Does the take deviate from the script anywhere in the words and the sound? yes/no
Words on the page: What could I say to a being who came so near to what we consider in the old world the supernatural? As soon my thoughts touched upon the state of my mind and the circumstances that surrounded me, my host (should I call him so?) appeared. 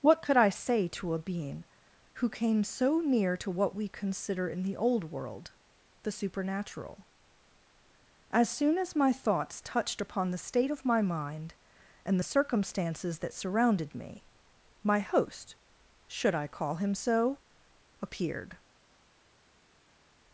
yes